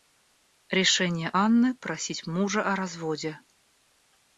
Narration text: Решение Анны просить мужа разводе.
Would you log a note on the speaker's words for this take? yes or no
yes